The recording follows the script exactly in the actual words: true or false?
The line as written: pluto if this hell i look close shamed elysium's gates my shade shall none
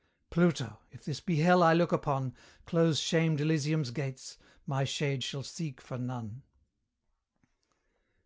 false